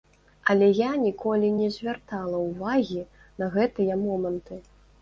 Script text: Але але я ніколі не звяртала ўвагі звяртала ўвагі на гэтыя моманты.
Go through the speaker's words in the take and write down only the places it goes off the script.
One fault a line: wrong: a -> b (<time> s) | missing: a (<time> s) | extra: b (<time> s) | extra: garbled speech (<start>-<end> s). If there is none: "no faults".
missing: але (0.7 s)
missing: звяртала ўвагі (3.1 s)